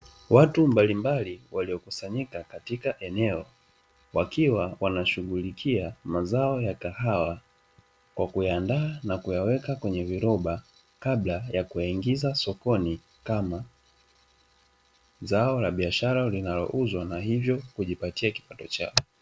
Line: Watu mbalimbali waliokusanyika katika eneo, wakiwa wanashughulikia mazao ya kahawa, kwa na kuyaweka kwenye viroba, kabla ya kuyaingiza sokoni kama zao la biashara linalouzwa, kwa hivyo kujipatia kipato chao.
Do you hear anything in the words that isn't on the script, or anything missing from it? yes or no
yes